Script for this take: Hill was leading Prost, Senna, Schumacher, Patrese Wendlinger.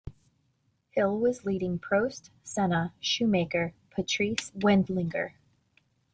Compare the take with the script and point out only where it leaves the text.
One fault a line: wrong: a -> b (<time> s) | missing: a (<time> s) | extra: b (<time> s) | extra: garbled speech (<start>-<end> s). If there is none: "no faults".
no faults